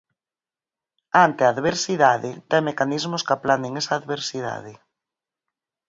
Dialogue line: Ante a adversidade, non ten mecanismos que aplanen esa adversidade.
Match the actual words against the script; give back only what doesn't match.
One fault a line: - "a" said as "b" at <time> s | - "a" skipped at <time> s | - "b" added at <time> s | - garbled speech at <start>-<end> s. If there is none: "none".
- "non" skipped at 2.3 s